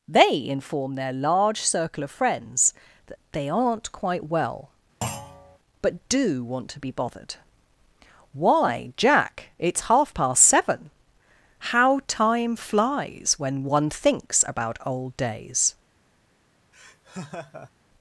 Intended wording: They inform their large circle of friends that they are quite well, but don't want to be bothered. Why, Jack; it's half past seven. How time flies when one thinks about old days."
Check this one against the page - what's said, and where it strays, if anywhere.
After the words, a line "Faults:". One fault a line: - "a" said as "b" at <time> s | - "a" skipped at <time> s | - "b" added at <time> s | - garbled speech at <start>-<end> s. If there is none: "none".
They inform their large circle of friends that they aren't quite well, but do want to be bothered. Why, Jack; it's half past seven. How time flies when one thinks about old days."
Faults:
- "are" said as "aren't" at 3.5 s
- "don't" said as "do" at 6.1 s